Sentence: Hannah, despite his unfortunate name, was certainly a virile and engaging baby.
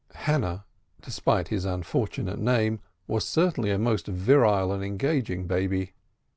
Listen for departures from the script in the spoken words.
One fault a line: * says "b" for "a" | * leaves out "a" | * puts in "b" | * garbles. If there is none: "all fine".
* puts in "most"